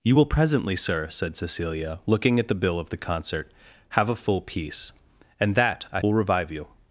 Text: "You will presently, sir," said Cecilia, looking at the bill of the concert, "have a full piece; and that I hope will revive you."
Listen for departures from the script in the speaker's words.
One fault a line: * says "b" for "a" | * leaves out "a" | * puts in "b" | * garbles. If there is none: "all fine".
* leaves out "hope"